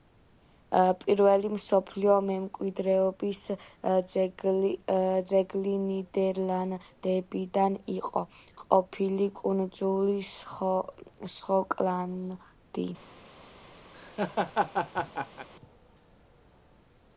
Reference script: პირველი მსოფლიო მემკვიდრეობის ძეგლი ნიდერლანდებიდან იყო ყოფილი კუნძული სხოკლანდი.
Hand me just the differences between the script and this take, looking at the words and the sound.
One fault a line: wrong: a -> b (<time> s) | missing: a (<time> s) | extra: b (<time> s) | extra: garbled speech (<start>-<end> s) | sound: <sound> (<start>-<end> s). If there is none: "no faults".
sound: laugh (13.9-15.5 s)